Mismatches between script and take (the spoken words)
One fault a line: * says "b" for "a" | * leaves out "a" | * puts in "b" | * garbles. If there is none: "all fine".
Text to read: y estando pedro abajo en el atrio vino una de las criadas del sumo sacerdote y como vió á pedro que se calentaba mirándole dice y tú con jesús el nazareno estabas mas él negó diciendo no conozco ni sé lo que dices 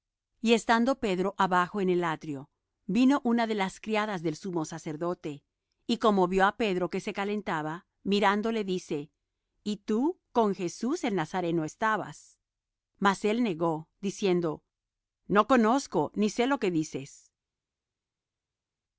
all fine